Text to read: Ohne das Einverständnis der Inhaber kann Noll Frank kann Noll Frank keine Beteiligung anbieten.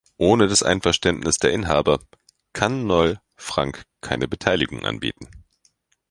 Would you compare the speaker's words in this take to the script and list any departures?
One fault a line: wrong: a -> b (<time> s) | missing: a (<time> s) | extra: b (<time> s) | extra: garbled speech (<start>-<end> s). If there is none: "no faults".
missing: kann Noll Frank (3.8 s)